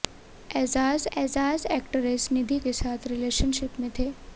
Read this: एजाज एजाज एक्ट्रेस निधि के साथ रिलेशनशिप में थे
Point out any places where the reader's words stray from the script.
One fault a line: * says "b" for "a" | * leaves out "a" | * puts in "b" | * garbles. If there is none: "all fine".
all fine